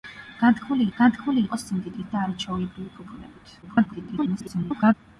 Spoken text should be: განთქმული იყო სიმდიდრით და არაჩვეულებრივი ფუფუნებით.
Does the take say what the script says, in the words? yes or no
no